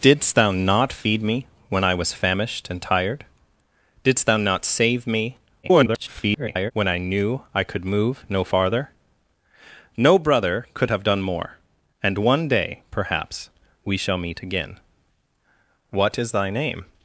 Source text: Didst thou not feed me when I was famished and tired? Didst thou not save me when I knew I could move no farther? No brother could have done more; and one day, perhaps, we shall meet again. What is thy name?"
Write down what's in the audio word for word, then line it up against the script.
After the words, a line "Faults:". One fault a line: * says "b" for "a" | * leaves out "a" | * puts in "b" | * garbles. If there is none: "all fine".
Didst thou not feed me when I was famished and tired? Didst thou not save me [garbled] when I knew I could move no farther? No brother could have done more; and one day, perhaps, we shall meet again. What is thy name?"
Faults:
* garbles